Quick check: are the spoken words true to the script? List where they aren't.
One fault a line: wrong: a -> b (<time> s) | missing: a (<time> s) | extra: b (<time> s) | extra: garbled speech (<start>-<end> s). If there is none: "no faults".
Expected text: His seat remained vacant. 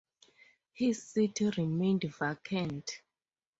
no faults